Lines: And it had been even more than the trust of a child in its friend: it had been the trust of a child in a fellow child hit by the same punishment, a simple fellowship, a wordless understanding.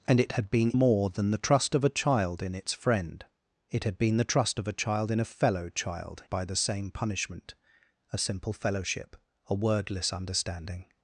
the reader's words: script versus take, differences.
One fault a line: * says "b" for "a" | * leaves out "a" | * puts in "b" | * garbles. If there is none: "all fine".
* leaves out "even"
* leaves out "hit"